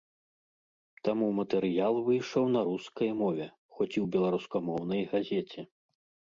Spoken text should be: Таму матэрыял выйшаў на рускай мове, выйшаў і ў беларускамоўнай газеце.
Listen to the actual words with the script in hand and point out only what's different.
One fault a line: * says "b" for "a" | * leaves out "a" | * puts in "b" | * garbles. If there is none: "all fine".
* says "хоць" for "выйшаў"